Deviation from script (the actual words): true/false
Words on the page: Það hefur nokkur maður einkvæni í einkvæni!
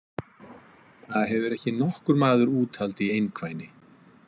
true